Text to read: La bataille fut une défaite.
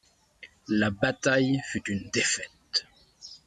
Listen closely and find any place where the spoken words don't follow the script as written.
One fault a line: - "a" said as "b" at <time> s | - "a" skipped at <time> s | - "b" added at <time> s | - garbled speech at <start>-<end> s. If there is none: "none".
none